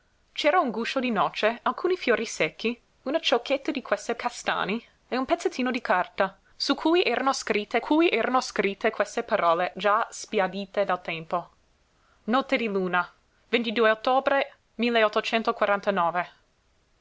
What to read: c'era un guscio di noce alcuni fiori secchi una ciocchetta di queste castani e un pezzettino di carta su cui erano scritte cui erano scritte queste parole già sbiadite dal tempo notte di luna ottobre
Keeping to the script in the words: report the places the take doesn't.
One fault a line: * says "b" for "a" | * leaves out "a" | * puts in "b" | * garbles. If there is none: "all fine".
all fine